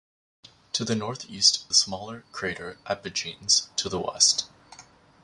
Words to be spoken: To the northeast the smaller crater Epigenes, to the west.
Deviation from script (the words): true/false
false